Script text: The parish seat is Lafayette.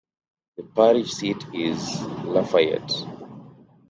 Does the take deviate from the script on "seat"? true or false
false